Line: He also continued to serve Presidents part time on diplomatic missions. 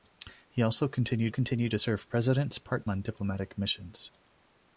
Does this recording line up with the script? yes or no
no